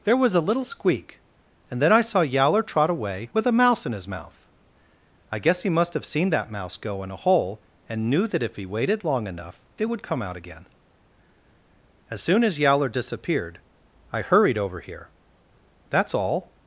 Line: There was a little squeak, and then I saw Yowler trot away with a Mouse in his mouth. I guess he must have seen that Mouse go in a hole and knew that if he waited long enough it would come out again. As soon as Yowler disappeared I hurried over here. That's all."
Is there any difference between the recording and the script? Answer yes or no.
no